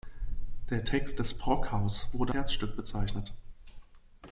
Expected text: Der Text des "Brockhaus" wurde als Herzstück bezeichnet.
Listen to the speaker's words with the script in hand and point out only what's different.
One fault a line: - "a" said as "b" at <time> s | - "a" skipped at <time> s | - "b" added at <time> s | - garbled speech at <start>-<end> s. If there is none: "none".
- "als" skipped at 2.3 s